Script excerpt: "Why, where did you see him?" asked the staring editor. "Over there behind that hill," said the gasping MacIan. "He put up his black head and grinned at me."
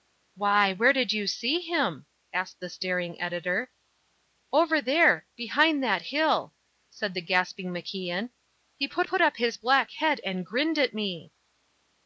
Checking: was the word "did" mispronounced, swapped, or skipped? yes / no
no